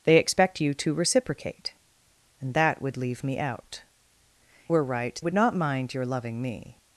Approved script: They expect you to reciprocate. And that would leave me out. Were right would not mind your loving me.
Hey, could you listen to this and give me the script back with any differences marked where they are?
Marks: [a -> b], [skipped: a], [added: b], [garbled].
They expect you to reciprocate. And that would leave me out. Were right would not mind your loving me.